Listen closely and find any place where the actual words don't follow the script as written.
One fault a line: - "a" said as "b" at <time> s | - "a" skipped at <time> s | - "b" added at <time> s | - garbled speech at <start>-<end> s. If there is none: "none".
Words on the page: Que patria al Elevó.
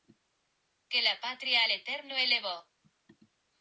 - "la" added at 1.0 s
- "Eterno" added at 1.7 s